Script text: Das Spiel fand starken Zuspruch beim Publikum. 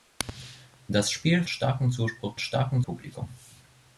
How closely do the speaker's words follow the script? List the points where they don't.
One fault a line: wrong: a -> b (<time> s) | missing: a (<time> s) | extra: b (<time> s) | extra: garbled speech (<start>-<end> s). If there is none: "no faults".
missing: fand (1.4 s)
wrong: beim -> starken (2.4 s)